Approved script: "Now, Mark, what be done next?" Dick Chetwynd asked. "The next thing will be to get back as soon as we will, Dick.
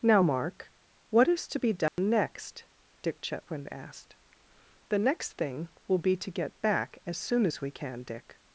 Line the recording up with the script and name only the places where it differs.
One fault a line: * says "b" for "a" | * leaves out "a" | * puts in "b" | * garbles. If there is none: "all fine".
* puts in "is to"
* says "can" for "will"